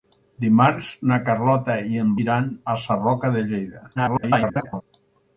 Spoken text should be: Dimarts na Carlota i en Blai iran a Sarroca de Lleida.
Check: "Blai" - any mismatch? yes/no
yes